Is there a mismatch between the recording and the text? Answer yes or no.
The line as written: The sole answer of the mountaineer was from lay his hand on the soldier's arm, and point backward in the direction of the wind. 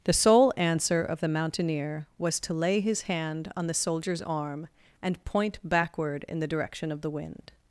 yes